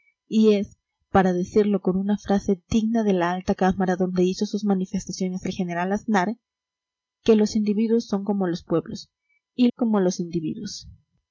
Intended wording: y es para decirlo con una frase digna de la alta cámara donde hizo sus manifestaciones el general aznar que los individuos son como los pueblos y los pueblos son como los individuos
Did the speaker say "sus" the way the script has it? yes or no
yes